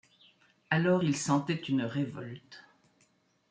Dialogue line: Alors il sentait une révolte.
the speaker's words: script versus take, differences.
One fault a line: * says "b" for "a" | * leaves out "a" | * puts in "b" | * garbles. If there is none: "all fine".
all fine